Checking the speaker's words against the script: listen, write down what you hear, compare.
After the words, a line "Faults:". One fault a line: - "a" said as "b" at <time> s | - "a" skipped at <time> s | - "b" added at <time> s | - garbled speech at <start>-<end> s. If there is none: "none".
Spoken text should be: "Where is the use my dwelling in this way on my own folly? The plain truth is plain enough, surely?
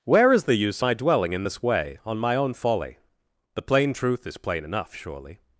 "Where is the use my dwelling in this way on my own folly? The plain truth is plain enough, surely?
Faults:
none